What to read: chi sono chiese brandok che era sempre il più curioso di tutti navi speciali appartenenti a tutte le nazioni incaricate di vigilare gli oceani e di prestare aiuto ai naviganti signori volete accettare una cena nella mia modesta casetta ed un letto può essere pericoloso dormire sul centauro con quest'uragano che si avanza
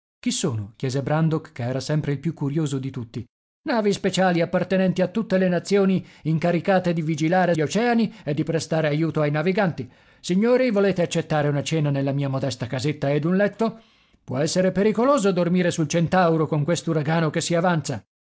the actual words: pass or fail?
pass